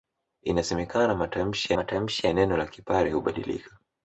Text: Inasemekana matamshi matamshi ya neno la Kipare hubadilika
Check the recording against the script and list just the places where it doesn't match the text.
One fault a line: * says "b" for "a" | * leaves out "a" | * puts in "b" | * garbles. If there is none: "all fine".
all fine